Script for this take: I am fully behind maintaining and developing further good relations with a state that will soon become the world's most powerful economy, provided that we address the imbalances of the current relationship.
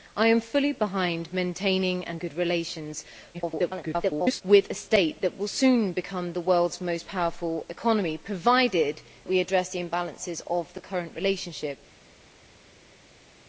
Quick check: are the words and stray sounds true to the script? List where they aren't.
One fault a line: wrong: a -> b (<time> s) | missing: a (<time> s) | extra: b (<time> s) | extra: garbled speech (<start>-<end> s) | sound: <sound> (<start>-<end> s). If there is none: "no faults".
missing: developing further (2.2 s)
extra: garbled speech (3.3-4.4 s)
missing: that (9.0 s)